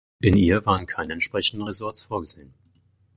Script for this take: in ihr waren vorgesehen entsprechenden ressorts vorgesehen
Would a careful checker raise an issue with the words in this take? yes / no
yes